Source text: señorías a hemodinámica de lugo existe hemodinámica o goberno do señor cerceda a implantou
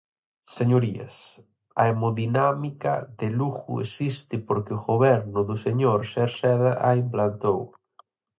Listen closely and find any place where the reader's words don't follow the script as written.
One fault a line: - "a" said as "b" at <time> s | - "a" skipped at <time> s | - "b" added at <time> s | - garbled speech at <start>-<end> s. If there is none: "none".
- "hemodinámica" said as "porque" at 4.5 s